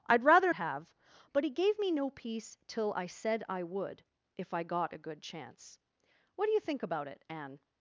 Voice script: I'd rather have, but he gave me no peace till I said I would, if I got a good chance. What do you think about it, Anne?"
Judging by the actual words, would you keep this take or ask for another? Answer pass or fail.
pass